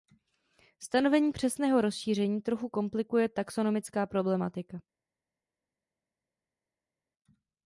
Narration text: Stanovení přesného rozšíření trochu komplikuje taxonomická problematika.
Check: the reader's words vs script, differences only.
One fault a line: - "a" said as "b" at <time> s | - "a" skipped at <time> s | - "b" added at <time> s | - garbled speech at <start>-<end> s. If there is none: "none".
none